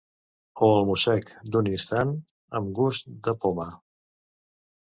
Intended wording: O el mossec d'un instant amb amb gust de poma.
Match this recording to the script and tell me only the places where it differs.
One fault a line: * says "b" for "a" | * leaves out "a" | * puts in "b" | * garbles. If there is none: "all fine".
* leaves out "amb"